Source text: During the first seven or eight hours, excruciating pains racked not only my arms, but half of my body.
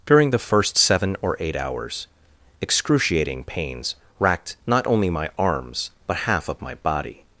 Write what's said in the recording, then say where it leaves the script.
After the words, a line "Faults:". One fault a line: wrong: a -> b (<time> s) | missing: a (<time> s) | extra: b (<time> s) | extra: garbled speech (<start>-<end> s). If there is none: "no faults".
During the first seven or eight hours, excruciating pains racked not only my arms, but half of my body.
Faults:
no faults